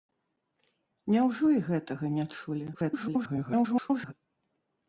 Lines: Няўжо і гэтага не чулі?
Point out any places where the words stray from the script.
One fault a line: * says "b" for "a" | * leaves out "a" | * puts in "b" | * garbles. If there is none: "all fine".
* garbles